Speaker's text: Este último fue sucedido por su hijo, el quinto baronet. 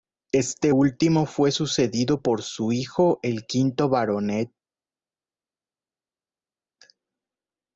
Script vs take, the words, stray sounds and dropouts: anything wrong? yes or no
no